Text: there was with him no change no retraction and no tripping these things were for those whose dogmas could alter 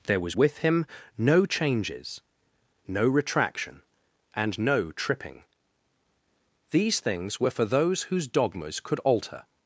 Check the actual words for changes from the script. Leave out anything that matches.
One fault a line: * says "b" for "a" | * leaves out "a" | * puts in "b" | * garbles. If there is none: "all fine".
* says "changes" for "change"